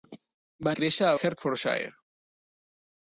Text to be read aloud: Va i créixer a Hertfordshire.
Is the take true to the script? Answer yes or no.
yes